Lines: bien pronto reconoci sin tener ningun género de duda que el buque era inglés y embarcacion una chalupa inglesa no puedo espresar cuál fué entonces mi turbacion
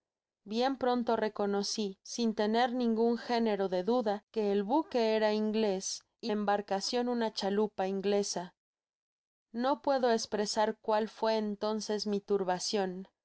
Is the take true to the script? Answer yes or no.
yes